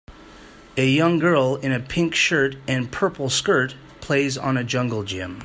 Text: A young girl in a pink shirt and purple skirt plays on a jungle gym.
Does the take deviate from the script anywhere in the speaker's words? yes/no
no